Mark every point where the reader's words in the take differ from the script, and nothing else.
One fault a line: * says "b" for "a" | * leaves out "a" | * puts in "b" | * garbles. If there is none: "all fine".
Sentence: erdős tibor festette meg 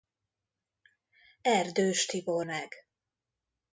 * leaves out "festette"